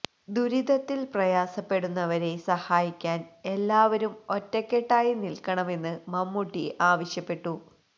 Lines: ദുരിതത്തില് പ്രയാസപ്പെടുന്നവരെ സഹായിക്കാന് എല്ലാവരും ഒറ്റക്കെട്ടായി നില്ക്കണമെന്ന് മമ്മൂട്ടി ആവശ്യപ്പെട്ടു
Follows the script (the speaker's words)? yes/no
yes